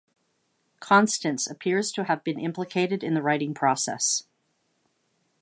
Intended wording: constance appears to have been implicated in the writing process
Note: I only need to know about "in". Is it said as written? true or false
true